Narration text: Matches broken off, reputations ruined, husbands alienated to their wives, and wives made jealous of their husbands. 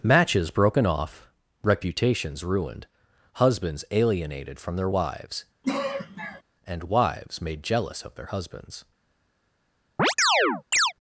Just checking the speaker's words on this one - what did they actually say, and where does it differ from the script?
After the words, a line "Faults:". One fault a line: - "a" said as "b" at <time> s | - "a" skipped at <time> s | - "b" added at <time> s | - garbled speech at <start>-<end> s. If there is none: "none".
Matches broken off, reputations ruined, husbands alienated from their wives, and wives made jealous of their husbands.
Faults:
- "to" said as "from" at 4.6 s